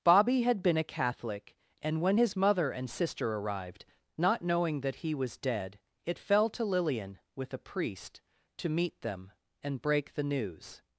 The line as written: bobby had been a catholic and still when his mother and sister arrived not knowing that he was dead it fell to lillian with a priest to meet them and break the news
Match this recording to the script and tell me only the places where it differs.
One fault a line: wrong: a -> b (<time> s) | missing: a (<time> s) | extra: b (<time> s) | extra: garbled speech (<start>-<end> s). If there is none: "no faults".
missing: still (2.0 s)